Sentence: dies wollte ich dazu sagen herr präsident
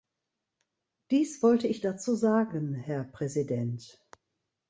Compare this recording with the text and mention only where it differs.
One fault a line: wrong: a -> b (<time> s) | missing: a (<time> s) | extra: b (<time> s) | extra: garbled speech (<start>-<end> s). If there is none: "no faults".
no faults